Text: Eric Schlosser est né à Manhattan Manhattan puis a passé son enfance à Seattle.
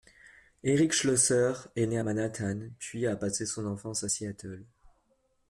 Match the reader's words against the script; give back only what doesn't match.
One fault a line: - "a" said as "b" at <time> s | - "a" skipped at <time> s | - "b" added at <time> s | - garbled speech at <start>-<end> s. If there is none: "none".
- "Manhattan" skipped at 2.7 s